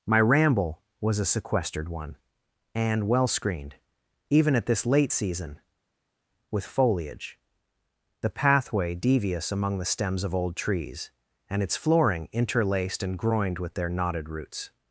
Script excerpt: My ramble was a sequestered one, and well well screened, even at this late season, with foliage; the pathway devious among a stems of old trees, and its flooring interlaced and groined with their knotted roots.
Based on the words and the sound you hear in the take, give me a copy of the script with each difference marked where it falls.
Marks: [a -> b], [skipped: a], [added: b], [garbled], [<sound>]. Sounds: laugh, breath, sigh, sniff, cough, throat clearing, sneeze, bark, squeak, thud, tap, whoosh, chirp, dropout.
My ramble was a sequestered one, and well [skipped: well] screened, even at this late season, with foliage; the pathway devious among [a -> the] stems of old trees, and its flooring interlaced and groined with their knotted roots.